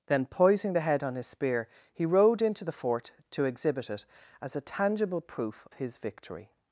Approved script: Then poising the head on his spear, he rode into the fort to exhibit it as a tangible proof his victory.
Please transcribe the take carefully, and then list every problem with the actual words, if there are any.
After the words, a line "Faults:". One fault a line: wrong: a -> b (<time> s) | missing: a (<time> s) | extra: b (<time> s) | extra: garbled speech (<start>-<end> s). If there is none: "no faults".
Then poising the head on his spear, he rode into the fort to exhibit it as a tangible proof his victory.
Faults:
no faults